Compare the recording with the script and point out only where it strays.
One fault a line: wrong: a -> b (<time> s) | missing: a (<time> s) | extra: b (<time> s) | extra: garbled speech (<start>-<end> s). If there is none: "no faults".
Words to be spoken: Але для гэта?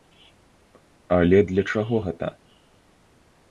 extra: чаго (1.8 s)